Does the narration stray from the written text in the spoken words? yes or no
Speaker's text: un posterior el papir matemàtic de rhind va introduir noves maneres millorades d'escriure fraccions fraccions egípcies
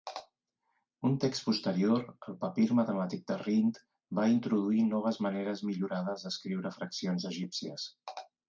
yes